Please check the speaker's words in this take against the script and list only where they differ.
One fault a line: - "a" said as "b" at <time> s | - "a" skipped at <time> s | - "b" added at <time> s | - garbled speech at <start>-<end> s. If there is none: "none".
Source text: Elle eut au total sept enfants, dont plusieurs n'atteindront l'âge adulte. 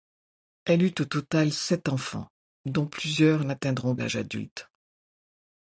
none